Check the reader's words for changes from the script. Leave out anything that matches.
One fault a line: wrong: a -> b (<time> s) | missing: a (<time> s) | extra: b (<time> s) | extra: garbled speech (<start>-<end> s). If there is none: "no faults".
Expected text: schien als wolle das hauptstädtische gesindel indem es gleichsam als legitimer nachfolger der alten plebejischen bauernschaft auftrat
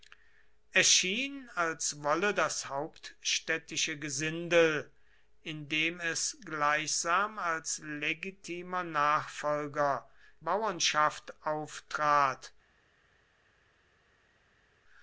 missing: der alten plebejischen (10.1 s)